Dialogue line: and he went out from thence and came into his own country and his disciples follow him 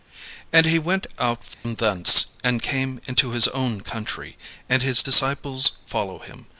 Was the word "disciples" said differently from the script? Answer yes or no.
no